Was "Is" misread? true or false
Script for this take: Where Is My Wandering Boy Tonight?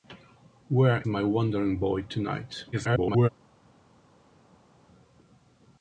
true